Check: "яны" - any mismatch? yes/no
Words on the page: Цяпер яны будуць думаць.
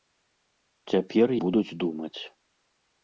yes